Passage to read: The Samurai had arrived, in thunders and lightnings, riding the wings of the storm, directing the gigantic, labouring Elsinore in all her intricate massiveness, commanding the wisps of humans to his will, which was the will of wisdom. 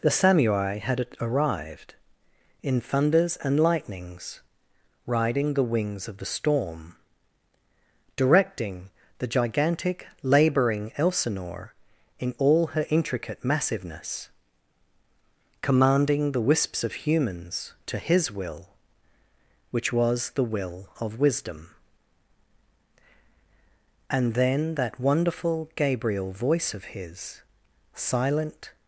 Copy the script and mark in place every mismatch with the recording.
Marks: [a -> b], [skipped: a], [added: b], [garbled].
The Samurai had arrived, in thunders and lightnings, riding the wings of the storm, directing the gigantic, labouring Elsinore in all her intricate massiveness, commanding the wisps of humans to his will, which was the will of wisdom. [added: And then that wonderful Gabriel voice of his silent]